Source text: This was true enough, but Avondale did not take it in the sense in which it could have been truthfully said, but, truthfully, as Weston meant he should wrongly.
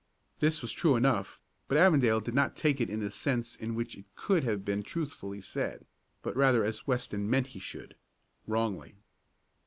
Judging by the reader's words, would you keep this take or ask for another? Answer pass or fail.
fail